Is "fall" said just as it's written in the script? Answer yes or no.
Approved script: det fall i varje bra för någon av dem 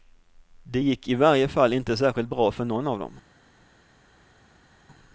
no